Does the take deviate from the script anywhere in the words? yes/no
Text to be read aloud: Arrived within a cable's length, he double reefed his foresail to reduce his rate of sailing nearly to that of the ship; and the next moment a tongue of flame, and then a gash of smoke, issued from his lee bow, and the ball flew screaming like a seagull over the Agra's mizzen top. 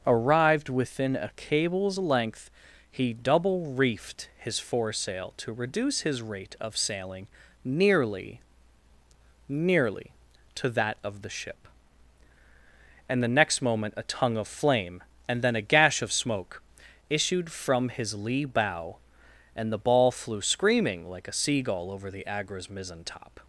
yes